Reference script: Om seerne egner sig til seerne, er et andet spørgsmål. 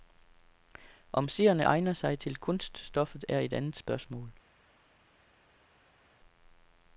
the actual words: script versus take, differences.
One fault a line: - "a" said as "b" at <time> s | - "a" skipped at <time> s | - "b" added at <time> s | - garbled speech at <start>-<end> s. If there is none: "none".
- "seerne" said as "kunststoffet" at 2.4 s